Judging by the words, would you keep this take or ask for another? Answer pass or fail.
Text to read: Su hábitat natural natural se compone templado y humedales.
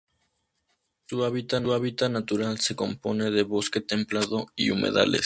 fail